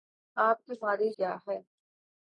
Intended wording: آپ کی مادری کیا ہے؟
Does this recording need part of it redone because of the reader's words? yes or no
no